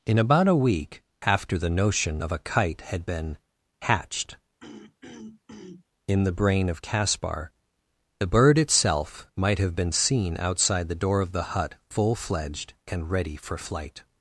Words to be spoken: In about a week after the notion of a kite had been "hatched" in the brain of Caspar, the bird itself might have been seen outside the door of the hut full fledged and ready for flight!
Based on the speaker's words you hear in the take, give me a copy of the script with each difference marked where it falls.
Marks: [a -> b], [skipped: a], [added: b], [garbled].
In about a week after the notion of a kite had been "hatched" in the brain of Caspar, the bird itself might have been seen outside the door of the hut full fledged and ready for flight!